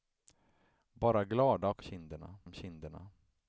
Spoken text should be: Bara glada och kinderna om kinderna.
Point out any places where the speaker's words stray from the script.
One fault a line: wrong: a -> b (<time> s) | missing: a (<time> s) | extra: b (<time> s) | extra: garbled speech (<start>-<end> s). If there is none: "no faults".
no faults